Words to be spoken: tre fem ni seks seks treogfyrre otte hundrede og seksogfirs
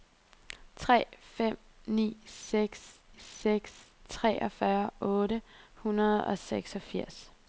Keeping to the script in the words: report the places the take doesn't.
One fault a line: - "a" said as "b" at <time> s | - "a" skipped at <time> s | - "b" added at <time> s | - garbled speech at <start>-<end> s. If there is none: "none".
none